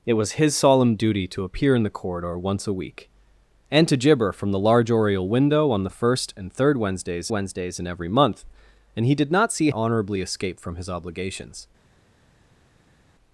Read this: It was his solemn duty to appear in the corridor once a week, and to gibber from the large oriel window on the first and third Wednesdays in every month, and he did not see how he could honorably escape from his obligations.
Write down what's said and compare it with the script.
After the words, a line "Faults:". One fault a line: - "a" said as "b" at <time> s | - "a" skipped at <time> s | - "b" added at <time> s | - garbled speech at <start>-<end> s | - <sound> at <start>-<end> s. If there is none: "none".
It was his solemn duty to appear in the corridor once a week, and to gibber from the large oriel window on the first and third Wednesdays Wednesdays in every month, and he did not see honorably escape from his obligations.
Faults:
- "Wednesdays" added at 7.3 s
- "how he could" skipped at 9.7 s